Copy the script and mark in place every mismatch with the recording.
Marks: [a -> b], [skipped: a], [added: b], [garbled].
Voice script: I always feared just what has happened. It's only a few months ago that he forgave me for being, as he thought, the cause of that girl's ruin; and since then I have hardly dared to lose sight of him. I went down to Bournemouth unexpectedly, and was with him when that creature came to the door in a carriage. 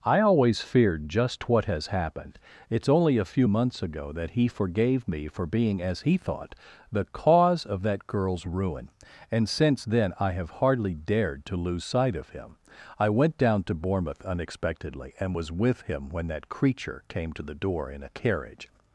I always feared just what has happened. It's only a few months ago that he forgave me for being, as he thought, the cause of that girl's ruin; and since then I have hardly dared to lose sight of him. I went down to Bournemouth unexpectedly, and was with him when that creature came to the door in a carriage.